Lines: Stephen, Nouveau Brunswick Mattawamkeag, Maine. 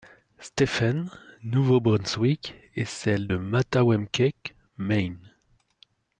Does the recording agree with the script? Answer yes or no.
no